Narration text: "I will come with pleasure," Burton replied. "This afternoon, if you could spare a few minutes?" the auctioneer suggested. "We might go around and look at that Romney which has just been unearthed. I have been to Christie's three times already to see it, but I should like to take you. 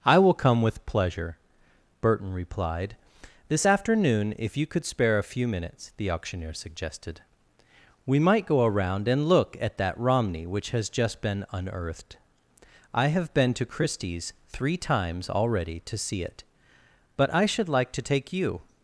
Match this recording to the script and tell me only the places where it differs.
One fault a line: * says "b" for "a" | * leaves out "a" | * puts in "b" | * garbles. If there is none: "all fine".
all fine